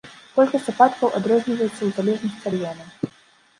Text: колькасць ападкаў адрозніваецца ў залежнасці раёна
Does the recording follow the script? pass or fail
pass